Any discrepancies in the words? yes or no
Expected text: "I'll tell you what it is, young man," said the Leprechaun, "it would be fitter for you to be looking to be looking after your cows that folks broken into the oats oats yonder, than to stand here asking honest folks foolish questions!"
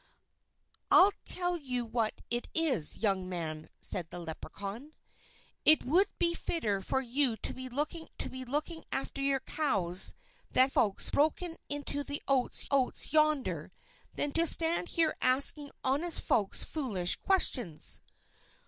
no